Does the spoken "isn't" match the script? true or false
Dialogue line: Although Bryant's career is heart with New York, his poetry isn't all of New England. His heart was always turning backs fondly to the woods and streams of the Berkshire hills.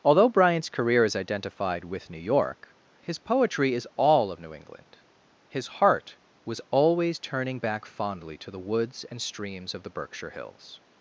false